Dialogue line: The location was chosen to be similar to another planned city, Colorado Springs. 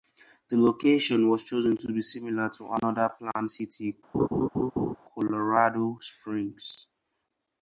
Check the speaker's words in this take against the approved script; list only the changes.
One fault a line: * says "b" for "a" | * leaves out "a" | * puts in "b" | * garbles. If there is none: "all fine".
all fine